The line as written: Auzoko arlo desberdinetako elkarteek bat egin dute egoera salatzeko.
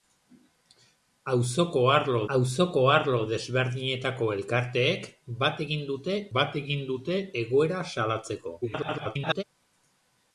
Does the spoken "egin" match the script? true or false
true